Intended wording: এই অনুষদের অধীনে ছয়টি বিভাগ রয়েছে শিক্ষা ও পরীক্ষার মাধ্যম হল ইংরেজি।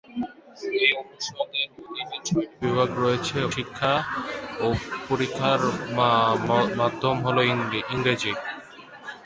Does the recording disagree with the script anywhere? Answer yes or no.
no